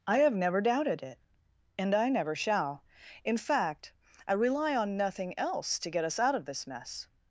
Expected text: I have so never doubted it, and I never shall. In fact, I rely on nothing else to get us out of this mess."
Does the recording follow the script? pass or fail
fail